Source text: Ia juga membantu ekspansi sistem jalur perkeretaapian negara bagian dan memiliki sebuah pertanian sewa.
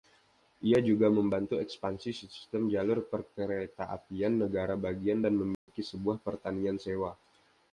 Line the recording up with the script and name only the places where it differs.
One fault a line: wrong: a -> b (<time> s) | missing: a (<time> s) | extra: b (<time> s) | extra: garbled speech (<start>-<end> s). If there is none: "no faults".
no faults